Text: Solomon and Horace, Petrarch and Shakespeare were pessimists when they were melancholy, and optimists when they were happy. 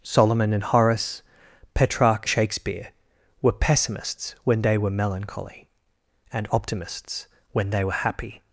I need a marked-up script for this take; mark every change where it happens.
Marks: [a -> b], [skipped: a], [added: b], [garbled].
Solomon and Horace, Petrarch [skipped: and] Shakespeare were pessimists when they were melancholy, and optimists when they were happy.